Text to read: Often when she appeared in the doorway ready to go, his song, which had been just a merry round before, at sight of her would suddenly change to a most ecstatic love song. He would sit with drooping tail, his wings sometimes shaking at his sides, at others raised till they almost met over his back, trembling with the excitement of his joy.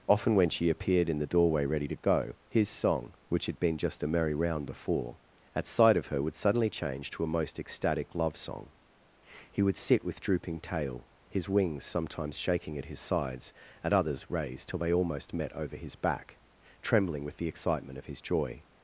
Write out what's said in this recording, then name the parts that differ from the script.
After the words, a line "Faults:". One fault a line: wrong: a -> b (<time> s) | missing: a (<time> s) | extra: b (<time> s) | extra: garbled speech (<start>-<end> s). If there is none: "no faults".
Often when she appeared in the doorway ready to go, his song, which had been just a merry round before, at sight of her would suddenly change to a most ecstatic love song. He would sit with drooping tail, his wings sometimes shaking at his sides, at others raised till they almost met over his back, trembling with the excitement of his joy.
Faults:
no faults